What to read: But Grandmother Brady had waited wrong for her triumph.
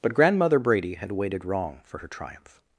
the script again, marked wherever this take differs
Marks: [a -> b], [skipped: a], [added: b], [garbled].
But Grandmother Brady had waited wrong for her triumph.